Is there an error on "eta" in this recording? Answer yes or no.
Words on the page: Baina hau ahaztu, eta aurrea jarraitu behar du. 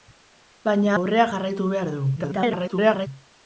yes